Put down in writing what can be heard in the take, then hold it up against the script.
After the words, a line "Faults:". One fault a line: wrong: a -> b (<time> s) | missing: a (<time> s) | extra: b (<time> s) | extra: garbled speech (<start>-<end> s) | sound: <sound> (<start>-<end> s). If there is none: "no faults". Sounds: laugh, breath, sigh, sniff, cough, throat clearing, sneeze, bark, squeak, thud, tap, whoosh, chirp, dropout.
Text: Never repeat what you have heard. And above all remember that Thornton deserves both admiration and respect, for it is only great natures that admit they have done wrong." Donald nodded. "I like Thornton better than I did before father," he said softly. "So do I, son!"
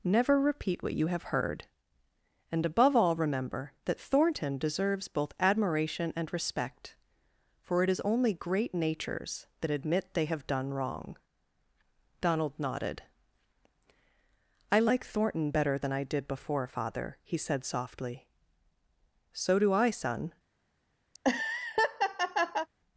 Never repeat what you have heard. And above all remember that Thornton deserves both admiration and respect, for it is only great natures that admit they have done wrong." Donald nodded. "I like Thornton better than I did before father," he said softly. "So do I, son!"
Faults:
sound: laugh (21.1-22.7 s)